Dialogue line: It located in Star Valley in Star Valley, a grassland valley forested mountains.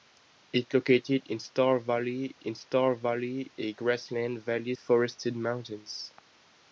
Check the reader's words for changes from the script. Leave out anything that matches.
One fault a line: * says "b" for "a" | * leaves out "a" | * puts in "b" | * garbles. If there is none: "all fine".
all fine